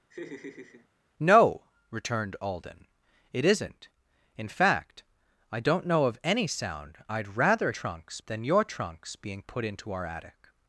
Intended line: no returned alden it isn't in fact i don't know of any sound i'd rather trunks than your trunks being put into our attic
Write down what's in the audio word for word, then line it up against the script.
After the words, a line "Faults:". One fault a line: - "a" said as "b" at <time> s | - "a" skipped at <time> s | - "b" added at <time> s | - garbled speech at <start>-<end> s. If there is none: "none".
no returned alden it isn't in fact i don't know of any sound i'd rather trunks than your trunks being put into our attic
Faults:
none